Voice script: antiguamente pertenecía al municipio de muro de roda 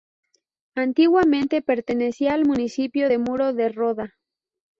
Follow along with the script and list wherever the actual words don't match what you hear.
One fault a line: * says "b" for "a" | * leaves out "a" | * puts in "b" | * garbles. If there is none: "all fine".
all fine